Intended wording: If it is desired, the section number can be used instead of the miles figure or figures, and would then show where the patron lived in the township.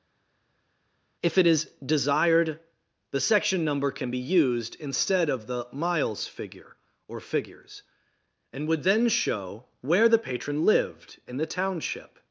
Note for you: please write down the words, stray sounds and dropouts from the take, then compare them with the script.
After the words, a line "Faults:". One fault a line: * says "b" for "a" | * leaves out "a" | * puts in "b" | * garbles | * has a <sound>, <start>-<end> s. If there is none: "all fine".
If it is desired, the section number can be used instead of the miles figure or figures, and would then show where the patron lived in the township.
Faults:
all fine